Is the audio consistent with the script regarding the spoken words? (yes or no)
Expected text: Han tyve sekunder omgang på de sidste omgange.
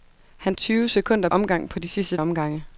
yes